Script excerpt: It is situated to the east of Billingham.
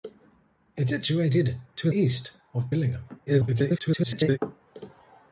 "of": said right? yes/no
yes